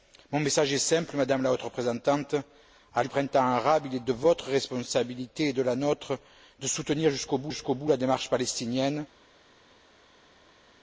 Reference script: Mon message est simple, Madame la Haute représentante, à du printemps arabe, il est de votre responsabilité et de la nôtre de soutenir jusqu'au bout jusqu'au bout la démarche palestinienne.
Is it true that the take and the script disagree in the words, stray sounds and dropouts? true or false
false